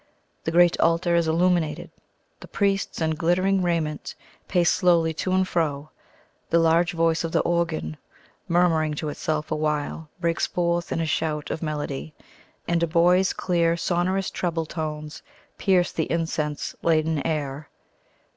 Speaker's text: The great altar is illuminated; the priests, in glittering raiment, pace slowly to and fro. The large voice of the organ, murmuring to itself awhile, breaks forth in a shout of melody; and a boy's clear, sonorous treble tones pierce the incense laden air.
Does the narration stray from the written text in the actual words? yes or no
no